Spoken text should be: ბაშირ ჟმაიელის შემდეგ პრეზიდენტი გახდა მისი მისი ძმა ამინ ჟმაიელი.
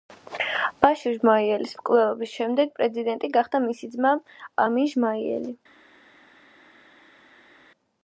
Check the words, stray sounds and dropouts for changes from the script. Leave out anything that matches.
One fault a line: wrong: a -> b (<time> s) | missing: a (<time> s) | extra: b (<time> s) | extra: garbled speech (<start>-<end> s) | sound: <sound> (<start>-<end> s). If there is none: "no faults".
extra: მკვლელობის (1.8 s)
missing: მისი (3.9 s)